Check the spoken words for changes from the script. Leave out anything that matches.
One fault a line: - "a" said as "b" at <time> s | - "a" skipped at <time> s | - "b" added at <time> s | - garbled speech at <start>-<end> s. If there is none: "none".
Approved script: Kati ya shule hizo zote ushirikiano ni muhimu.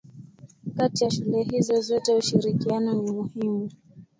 none